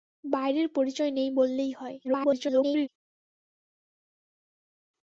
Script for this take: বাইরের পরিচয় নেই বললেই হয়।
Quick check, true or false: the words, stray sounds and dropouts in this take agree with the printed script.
false